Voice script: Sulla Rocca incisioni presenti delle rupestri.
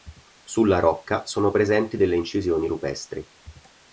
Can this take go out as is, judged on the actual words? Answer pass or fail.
fail